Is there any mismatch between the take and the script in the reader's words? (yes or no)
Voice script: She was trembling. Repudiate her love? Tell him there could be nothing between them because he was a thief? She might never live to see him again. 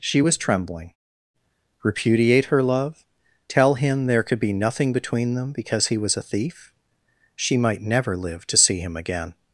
no